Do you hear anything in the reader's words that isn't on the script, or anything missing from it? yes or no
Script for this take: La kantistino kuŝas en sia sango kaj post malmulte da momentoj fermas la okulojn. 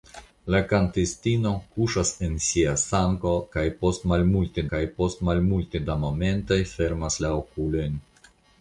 yes